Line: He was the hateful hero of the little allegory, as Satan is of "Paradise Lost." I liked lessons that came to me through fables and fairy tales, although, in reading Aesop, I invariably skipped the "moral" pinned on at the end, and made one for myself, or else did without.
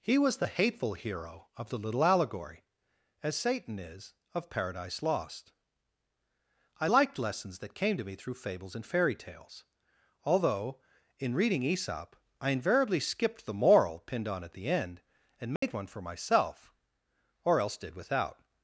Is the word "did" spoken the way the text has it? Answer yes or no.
yes